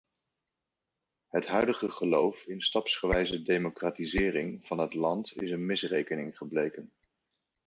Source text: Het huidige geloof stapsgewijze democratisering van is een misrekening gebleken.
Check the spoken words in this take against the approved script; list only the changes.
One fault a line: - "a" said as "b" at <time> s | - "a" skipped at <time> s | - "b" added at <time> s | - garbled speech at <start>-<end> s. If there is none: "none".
- "in" added at 2.5 s
- "het land" added at 4.8 s